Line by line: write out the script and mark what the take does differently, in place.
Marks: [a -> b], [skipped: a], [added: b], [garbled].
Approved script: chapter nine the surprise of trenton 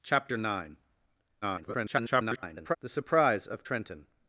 chapter nine [garbled] the surprise of trenton